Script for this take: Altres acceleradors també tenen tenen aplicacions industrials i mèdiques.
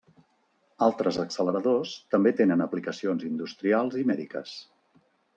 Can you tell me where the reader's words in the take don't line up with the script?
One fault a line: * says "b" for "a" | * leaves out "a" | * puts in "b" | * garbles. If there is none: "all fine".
* leaves out "tenen"